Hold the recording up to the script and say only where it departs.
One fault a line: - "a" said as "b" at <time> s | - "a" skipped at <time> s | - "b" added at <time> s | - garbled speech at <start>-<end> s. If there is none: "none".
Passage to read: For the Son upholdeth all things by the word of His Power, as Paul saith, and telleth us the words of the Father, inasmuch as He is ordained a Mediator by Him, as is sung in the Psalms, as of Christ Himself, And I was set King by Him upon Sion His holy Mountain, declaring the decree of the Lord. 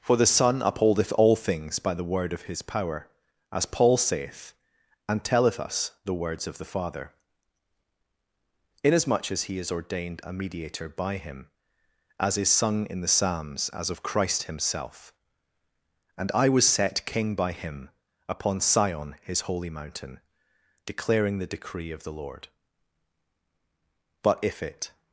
- "But if it" added at 24.2 s